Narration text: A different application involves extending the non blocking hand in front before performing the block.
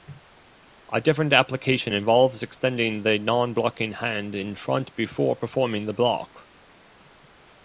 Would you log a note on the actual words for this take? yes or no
no